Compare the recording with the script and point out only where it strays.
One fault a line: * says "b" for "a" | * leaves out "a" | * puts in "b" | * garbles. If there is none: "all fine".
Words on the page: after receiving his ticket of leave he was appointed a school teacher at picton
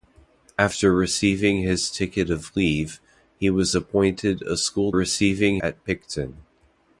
* says "receiving" for "teacher"